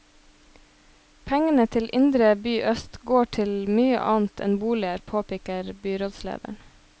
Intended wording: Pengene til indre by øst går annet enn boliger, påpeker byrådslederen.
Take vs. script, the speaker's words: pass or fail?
fail